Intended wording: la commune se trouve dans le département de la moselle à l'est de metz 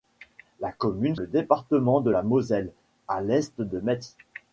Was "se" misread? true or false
true